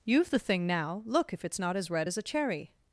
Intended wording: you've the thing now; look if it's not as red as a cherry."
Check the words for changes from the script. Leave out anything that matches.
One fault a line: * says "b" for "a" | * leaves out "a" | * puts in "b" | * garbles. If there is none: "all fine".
all fine